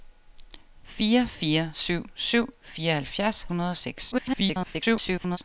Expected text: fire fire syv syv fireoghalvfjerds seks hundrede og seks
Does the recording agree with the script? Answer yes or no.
no